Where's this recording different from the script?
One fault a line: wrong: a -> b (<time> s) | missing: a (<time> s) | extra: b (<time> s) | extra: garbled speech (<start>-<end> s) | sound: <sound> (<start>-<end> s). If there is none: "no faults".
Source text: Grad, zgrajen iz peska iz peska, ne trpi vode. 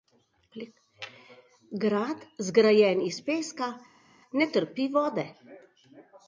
missing: iz peska (3.7 s)